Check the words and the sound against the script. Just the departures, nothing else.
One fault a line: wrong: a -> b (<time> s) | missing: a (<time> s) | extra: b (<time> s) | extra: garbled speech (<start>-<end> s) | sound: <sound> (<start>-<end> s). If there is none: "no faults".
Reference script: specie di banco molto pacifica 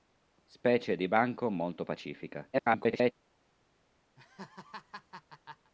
extra: garbled speech (2.5-3.1 s)
sound: laugh (4.2-5.7 s)